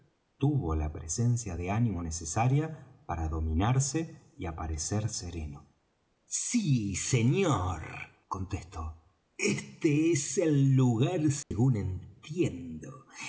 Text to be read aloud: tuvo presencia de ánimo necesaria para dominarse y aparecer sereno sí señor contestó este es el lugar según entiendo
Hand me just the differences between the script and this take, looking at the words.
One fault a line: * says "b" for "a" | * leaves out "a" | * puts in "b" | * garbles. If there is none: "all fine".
* puts in "la"